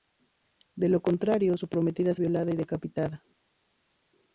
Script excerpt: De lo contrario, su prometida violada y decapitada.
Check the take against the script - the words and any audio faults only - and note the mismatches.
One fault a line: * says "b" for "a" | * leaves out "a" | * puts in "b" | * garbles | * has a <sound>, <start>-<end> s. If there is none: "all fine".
all fine